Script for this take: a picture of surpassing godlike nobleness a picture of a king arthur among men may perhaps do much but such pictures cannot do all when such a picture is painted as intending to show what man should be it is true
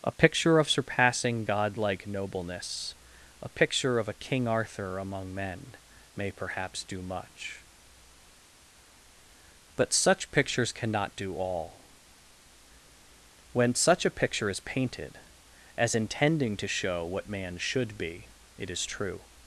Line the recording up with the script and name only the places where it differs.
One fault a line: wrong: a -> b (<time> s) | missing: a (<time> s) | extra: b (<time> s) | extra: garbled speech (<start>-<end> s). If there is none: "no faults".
no faults